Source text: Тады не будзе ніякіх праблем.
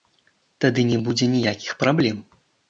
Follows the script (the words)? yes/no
yes